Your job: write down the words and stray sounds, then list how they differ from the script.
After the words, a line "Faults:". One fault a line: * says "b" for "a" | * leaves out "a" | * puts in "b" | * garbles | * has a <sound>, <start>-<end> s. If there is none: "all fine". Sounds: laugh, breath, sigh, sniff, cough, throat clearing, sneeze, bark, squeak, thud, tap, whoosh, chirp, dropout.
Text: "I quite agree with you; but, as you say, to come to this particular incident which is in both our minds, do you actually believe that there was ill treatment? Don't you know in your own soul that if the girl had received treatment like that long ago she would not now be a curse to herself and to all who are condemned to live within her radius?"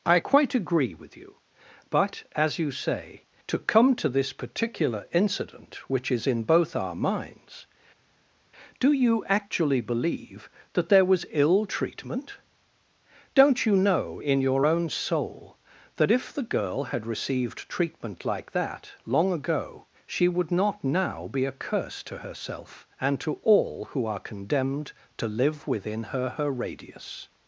"I quite agree with you; but, as you say, to come to this particular incident which is in both our minds, do you actually believe that there was ill treatment? Don't you know in your own soul that if the girl had received treatment like that long ago she would not now be a curse to herself and to all who are condemned to live within her her radius?"
Faults:
* puts in "her"